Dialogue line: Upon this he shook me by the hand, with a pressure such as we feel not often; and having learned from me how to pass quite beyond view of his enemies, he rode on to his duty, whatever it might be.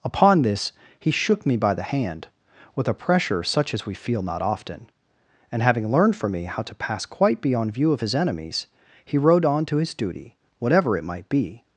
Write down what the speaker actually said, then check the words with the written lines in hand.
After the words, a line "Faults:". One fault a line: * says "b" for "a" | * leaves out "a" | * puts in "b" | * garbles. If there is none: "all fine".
Upon this he shook me by the hand, with a pressure such as we feel not often; and having learned from me how to pass quite beyond view of his enemies, he rode on to his duty, whatever it might be.
Faults:
all fine